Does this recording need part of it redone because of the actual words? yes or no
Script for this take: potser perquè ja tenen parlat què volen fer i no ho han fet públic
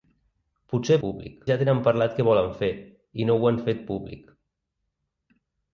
yes